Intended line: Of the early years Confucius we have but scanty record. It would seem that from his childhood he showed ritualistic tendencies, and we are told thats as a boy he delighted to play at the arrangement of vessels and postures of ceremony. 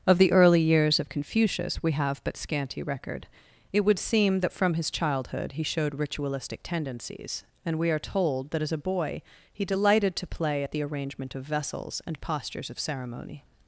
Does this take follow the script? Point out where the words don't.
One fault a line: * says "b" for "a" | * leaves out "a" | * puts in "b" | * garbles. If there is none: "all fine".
* puts in "of"
* says "that" for "thats"